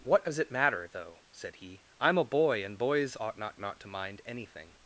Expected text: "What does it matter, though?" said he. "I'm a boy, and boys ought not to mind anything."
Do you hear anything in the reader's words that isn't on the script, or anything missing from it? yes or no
yes